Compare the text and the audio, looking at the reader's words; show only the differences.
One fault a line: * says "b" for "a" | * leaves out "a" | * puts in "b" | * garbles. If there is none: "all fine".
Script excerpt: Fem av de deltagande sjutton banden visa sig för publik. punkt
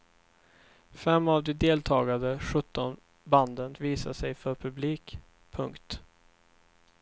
all fine